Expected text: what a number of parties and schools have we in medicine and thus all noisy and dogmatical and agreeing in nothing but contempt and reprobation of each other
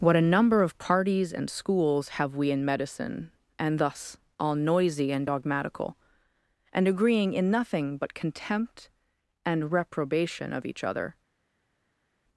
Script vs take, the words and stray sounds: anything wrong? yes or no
no